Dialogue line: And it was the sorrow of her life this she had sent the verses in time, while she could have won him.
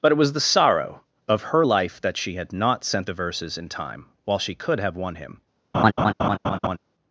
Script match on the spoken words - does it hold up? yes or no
no